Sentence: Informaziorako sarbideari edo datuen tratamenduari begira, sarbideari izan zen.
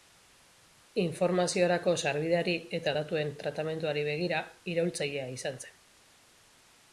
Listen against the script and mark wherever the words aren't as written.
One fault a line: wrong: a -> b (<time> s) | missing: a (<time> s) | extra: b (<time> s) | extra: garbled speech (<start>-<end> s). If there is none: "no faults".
wrong: edo -> eta (2.8 s)
wrong: sarbideari -> iraultzailea (4.7 s)